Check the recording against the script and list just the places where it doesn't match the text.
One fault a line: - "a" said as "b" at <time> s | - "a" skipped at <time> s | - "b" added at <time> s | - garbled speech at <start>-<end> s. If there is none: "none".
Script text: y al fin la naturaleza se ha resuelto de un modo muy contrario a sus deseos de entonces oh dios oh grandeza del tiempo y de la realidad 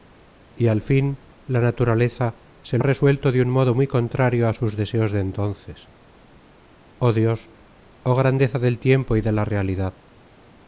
none